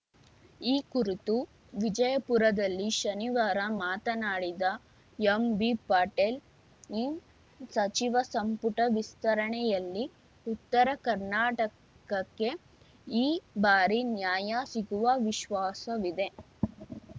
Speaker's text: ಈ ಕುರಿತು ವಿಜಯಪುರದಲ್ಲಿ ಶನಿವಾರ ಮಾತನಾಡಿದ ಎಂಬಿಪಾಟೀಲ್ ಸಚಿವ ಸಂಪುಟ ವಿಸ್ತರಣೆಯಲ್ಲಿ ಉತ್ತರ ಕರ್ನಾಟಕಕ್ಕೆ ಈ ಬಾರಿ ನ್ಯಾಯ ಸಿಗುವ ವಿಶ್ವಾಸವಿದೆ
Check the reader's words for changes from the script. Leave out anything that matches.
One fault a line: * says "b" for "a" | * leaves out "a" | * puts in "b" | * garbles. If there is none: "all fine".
all fine